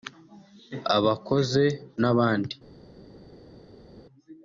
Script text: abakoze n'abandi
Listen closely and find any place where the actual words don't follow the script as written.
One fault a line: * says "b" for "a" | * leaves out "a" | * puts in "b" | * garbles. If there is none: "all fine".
all fine